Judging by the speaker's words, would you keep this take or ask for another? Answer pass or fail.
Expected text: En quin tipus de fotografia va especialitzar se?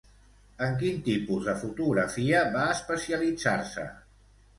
pass